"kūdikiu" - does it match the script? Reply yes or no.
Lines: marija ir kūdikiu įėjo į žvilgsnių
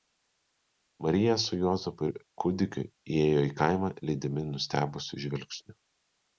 yes